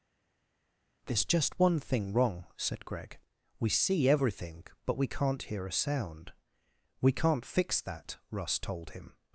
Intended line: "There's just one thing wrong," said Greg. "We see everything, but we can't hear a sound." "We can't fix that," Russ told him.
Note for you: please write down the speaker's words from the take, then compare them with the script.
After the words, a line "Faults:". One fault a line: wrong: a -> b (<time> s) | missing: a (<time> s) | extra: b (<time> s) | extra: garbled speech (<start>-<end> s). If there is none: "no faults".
"There's just one thing wrong," said Greg. "We see everything, but we can't hear a sound." "We can't fix that," Russ told him.
Faults:
no faults